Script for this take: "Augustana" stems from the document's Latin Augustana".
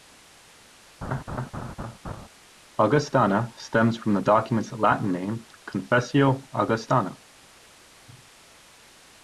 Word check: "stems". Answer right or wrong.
right